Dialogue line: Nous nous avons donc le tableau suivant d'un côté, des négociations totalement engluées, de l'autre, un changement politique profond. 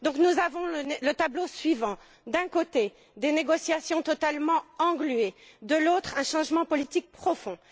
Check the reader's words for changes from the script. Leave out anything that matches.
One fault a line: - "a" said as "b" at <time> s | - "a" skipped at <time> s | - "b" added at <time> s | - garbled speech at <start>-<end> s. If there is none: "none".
- "nous" skipped at 0.4 s